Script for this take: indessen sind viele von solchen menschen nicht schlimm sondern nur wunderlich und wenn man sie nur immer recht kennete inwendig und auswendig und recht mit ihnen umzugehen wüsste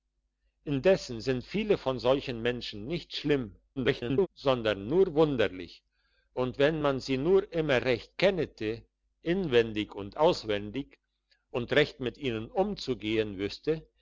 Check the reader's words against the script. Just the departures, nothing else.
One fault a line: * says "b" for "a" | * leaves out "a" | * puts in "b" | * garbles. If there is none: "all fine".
* garbles